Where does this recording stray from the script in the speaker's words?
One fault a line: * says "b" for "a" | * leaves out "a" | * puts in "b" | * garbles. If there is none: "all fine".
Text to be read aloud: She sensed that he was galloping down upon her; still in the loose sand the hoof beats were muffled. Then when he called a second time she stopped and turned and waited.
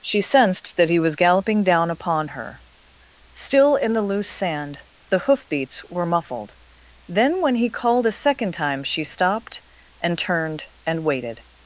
all fine